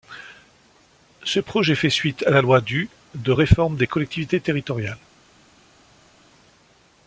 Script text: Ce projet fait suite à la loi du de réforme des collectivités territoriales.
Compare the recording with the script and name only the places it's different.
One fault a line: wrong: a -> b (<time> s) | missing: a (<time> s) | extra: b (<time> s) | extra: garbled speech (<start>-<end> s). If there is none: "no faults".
no faults